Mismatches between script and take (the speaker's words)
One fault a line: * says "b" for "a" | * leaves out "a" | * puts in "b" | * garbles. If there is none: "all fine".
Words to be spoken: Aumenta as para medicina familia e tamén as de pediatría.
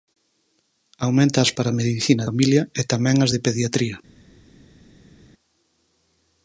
all fine